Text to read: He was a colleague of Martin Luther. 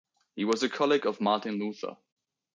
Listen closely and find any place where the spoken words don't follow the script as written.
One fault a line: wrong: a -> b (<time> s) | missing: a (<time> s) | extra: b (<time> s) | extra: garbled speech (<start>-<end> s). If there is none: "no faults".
no faults